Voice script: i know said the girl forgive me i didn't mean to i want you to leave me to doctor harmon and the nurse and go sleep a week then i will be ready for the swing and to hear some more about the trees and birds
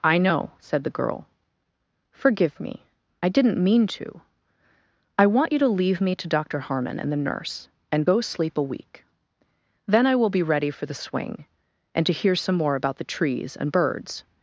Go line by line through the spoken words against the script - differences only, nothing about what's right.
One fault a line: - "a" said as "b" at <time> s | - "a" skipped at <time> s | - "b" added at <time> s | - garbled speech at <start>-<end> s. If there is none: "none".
none